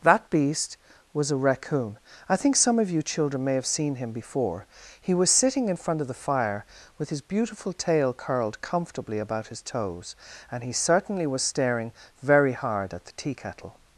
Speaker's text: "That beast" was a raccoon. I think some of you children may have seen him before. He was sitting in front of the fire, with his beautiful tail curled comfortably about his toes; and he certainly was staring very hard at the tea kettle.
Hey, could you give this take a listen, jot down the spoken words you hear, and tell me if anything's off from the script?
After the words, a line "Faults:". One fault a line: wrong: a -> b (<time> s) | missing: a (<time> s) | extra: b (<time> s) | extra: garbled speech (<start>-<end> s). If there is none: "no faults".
"That beast" was a raccoon. I think some of you children may have seen him before. He was sitting in front of the fire, with his beautiful tail curled comfortably about his toes; and he certainly was staring very hard at the tea kettle.
Faults:
no faults